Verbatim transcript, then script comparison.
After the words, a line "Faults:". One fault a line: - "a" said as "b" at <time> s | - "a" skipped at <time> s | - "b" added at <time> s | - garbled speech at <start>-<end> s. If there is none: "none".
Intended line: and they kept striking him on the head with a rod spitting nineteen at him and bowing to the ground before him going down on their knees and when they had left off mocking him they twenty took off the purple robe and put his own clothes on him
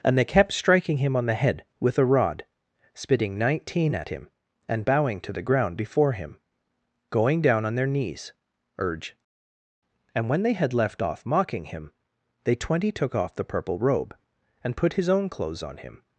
and they kept striking him on the head with a rod spitting nineteen at him and bowing to the ground before him going down on their knees urge and when they had left off mocking him they twenty took off the purple robe and put his own clothes on him
Faults:
- "urge" added at 8.8 s